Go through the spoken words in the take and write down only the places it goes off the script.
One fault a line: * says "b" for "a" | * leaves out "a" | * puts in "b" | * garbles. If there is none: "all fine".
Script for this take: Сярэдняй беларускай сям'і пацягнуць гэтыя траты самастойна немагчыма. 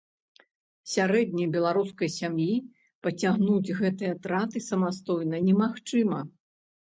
all fine